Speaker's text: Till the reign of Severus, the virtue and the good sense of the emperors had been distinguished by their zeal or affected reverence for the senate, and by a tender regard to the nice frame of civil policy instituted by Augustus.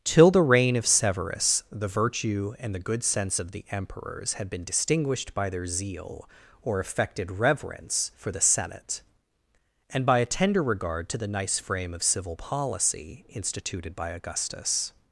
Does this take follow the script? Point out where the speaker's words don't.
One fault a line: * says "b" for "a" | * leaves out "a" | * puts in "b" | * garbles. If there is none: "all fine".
all fine